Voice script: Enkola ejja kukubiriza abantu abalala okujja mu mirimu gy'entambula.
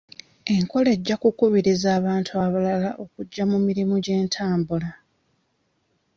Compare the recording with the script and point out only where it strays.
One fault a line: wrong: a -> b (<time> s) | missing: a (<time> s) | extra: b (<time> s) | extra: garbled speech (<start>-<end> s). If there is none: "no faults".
no faults